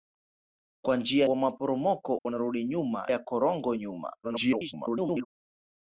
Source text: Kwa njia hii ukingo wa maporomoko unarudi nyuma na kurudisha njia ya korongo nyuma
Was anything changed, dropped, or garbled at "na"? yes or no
yes